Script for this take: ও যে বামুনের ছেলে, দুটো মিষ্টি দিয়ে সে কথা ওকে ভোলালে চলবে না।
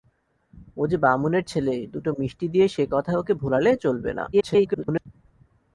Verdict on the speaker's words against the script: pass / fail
fail